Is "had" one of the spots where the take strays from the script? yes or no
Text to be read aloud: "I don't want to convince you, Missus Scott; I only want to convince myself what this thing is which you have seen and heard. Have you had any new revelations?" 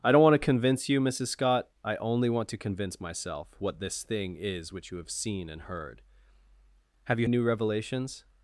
yes